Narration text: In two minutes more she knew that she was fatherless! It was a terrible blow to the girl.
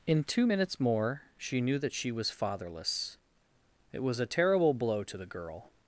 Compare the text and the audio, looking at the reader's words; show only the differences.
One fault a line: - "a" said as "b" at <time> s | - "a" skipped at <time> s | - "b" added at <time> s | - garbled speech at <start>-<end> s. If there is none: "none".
none